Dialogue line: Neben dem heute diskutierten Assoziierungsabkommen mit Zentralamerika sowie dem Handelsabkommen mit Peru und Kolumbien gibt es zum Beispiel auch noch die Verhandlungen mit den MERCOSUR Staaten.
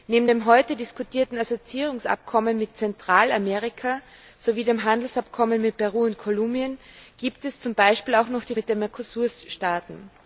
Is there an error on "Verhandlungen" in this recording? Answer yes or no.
yes